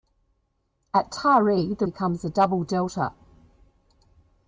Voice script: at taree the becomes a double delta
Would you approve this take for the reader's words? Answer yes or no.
yes